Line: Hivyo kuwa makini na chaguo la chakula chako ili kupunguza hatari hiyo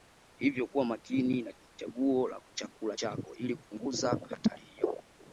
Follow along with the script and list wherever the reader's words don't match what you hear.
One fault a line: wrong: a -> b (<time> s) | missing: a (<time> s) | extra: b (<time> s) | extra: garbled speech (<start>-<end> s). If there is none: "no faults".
no faults